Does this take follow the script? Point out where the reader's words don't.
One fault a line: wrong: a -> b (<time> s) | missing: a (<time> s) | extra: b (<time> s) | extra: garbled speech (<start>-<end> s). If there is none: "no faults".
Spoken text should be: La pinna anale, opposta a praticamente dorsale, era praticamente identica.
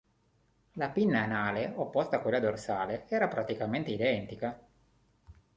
wrong: praticamente -> quella (2.2 s)